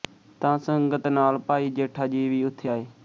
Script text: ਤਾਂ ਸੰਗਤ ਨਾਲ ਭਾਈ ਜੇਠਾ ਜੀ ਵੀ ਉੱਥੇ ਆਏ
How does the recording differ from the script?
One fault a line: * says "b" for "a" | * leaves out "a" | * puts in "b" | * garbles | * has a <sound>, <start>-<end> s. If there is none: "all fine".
all fine